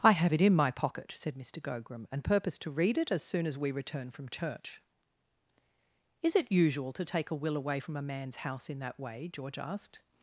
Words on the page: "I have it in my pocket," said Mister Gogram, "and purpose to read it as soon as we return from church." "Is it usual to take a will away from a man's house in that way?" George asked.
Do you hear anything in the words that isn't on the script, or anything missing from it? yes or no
no